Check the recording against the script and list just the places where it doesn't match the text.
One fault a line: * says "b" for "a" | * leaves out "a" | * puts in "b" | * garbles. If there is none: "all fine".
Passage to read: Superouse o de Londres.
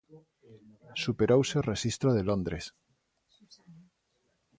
* puts in "rexistro"